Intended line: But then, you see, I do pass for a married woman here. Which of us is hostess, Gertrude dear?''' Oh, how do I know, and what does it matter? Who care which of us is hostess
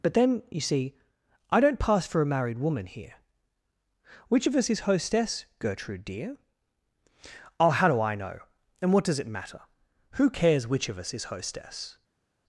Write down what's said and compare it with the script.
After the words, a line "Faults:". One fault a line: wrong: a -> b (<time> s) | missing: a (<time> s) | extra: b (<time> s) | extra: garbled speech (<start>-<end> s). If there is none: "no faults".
But then, you see, I don't pass for a married woman here. Which of us is hostess, Gertrude dear?''' Oh, how do I know, and what does it matter? Who cares which of us is hostess
Faults:
wrong: do -> don't (1.6 s)
wrong: care -> cares (10.3 s)